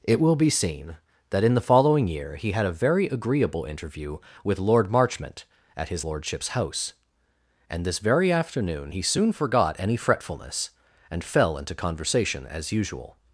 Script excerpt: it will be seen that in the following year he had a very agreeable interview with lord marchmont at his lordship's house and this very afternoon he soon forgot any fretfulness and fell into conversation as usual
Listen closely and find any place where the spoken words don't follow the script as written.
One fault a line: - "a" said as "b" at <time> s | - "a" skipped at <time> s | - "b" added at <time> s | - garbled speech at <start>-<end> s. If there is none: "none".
none